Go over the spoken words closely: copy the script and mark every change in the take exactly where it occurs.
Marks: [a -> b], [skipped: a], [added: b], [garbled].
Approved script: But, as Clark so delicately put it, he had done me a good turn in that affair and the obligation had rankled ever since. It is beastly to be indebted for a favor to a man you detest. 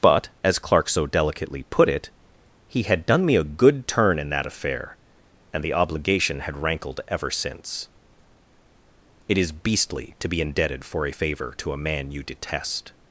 But, as Clark so delicately put it, he had done me a good turn in that affair and the obligation had rankled ever since. It is beastly to be indebted for a favor to a man you detest.